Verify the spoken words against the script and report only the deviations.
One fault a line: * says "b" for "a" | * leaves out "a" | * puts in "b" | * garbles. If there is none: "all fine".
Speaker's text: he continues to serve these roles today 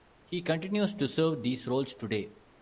all fine